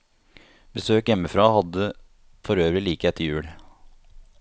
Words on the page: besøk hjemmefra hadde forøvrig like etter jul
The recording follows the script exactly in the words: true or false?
true